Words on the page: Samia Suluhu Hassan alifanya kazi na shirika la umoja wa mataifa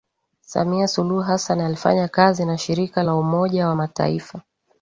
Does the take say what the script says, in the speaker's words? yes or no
yes